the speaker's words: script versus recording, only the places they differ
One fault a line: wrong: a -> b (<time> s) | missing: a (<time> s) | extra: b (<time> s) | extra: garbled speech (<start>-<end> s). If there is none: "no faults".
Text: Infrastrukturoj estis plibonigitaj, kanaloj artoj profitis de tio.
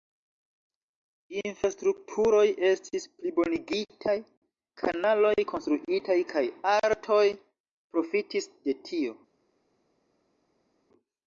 extra: konstruitaj kaj (5.5 s)